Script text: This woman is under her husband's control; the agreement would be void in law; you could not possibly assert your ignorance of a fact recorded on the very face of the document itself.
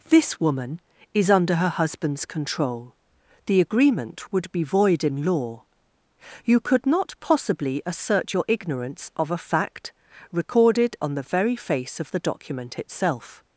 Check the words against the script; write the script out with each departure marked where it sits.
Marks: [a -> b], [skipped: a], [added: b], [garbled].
This woman is under her husband's control; the agreement would be void in law; you could not possibly assert your ignorance of a fact recorded on the very face of the document itself.